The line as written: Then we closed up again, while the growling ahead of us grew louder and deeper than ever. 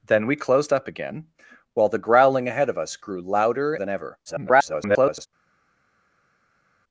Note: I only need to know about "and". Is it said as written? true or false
false